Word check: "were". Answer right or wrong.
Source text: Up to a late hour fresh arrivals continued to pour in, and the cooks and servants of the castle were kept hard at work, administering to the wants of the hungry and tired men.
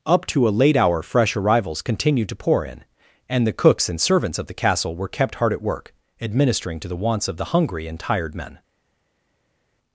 right